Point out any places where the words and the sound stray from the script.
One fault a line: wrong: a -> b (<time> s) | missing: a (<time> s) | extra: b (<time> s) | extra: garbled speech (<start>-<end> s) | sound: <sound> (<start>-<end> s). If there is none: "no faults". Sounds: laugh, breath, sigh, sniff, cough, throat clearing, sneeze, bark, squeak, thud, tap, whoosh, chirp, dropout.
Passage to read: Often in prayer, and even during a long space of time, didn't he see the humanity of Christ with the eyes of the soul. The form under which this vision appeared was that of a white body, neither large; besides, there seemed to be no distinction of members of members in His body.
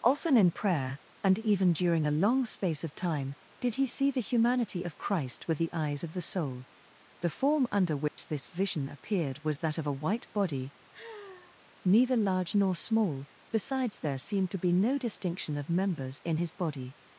wrong: didn't -> did (3.6 s)
sound: dropout (8.1-8.2 s)
sound: sigh (10.9-11.6 s)
extra: nor small (12.5 s)
missing: of members (16.2 s)